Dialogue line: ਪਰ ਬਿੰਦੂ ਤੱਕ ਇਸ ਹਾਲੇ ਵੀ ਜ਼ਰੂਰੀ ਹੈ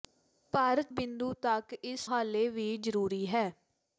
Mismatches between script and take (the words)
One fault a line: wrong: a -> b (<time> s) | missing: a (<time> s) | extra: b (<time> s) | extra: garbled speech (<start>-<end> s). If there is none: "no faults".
no faults